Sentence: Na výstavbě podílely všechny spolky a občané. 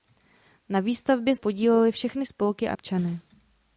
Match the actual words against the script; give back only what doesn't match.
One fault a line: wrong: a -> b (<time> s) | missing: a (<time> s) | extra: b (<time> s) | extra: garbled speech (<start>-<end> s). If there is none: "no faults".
no faults